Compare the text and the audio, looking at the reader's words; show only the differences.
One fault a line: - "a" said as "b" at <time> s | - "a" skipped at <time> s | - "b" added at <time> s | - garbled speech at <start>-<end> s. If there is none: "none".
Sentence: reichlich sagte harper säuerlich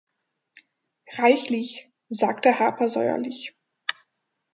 none